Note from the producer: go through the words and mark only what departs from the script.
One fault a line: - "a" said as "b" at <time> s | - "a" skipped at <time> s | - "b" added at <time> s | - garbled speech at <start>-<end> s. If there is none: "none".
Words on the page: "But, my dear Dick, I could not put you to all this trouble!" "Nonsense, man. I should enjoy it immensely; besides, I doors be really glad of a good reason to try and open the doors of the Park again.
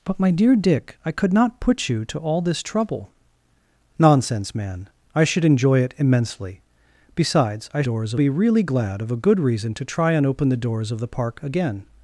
none